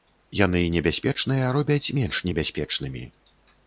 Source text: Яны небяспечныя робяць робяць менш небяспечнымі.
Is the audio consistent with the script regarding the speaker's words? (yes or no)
no